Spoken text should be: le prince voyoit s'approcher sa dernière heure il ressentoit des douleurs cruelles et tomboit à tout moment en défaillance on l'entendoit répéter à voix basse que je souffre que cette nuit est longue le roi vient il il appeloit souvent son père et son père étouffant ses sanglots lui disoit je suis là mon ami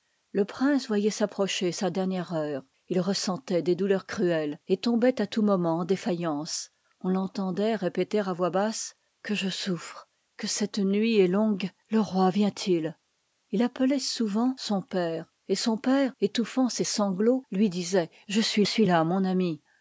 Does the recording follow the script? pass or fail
fail